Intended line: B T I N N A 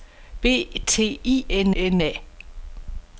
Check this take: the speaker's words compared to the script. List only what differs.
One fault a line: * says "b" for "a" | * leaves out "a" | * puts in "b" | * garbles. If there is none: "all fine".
all fine